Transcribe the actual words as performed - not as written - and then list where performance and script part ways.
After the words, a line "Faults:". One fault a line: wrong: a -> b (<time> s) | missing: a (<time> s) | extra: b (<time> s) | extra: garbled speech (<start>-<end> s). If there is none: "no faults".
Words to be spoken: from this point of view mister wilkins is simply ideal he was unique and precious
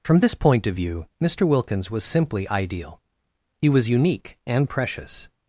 from this point of view mister wilkins was simply ideal he was unique and precious
Faults:
wrong: is -> was (1.9 s)